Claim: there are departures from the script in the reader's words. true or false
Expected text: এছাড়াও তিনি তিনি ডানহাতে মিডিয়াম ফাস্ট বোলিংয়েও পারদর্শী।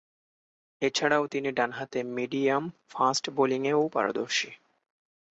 true